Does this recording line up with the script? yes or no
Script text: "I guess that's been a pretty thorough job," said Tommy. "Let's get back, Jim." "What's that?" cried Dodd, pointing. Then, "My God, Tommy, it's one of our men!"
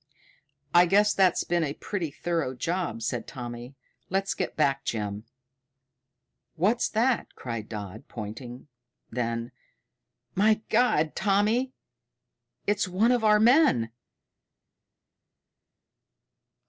yes